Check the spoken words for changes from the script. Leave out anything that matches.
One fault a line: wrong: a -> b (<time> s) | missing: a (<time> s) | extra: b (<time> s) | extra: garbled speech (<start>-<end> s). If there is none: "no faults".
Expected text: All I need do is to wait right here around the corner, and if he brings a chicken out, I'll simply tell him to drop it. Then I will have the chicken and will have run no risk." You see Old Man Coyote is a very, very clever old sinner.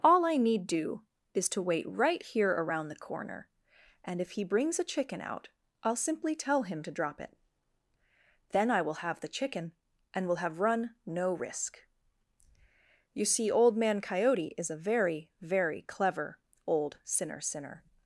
extra: sinner (17.4 s)